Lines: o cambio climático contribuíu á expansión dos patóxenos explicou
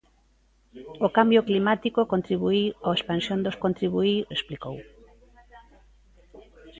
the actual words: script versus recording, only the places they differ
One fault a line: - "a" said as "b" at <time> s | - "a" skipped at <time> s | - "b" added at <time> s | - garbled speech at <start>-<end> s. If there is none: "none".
- "patóxenos" said as "contribuíu" at 3.6 s